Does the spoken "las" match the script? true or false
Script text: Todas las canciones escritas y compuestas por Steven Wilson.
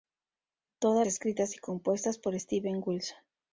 false